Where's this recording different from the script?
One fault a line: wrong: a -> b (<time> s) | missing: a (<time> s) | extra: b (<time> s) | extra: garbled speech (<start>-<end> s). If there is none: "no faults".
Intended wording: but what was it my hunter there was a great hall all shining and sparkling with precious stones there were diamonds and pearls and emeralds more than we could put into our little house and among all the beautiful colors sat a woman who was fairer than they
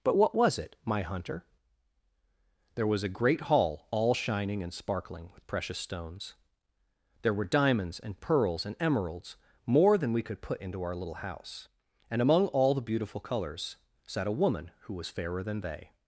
no faults